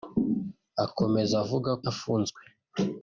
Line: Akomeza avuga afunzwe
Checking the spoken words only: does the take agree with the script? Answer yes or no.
yes